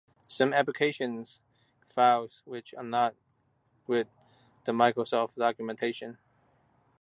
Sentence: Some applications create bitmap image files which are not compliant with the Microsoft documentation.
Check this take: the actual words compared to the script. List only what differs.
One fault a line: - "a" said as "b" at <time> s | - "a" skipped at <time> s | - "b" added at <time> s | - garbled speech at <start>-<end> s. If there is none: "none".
- "create bitmap image" skipped at 1.4 s
- "compliant" skipped at 3.2 s